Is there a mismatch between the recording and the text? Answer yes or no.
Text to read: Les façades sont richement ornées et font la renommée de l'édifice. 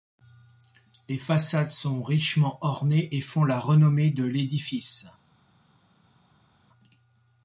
no